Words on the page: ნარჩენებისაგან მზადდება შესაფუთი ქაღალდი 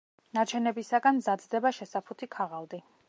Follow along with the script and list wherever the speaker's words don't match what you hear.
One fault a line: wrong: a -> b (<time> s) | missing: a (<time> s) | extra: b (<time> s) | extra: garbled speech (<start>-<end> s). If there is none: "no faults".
no faults